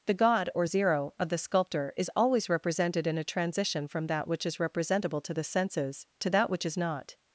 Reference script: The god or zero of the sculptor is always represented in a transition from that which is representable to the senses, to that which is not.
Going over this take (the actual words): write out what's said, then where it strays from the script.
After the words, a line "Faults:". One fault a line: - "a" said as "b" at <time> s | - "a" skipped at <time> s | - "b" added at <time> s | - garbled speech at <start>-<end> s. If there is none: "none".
The god or zero of the sculptor is always represented in a transition from that which is representable to the senses, to that which is not.
Faults:
none